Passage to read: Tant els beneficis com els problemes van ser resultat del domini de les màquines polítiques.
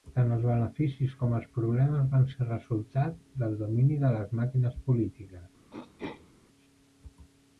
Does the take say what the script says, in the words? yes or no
yes